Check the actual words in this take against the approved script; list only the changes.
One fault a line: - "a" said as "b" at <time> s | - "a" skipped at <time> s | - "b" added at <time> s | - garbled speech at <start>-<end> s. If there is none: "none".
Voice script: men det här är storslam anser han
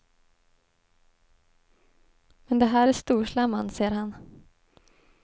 none